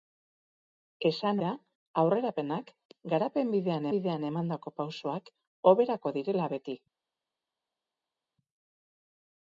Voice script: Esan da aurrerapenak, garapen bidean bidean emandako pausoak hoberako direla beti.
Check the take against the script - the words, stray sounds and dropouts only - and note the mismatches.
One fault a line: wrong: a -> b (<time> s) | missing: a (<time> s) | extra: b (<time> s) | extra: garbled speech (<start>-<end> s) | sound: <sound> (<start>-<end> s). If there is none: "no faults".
no faults